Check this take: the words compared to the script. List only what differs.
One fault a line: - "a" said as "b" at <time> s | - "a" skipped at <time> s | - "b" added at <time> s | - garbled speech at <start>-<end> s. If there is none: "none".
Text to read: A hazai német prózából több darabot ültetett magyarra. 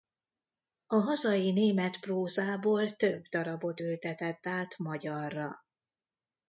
- "át" added at 4.5 s